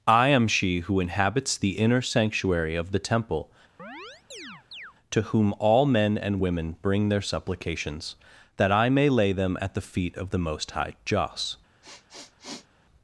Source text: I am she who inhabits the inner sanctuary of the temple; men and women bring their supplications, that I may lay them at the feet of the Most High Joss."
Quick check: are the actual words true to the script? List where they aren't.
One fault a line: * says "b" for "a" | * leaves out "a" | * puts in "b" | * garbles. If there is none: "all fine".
* puts in "to whom all"